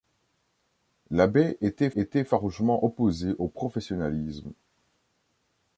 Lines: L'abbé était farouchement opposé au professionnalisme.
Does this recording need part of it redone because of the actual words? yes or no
yes